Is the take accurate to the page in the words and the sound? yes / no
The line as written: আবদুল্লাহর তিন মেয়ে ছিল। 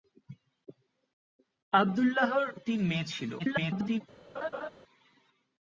no